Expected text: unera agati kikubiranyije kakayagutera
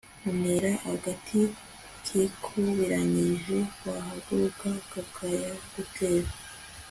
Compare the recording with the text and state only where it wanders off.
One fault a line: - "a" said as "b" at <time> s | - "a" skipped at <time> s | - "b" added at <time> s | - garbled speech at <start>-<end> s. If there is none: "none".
- "wahaguruka" added at 3.9 s